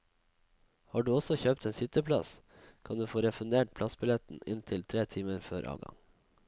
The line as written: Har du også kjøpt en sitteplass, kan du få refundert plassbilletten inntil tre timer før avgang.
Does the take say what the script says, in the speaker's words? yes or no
yes